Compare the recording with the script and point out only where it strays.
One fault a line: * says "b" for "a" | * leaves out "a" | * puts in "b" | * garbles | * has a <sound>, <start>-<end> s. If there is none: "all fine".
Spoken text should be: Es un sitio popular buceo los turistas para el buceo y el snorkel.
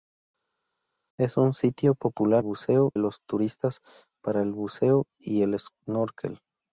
all fine